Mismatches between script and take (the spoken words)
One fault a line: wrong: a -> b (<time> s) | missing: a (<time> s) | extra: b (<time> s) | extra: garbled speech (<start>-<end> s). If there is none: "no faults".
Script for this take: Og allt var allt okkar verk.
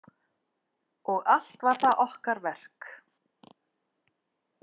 wrong: allt -> það (1.8 s)